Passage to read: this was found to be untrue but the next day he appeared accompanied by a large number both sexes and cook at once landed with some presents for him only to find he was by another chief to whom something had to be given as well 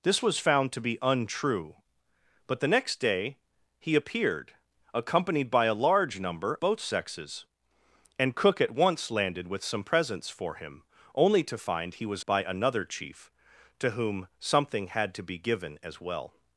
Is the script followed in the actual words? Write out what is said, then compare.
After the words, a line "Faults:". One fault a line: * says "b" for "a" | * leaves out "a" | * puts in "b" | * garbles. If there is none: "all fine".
this was found to be untrue but the next day he appeared accompanied by a large number both sexes and cook at once landed with some presents for him only to find he was by another chief to whom something had to be given as well
Faults:
all fine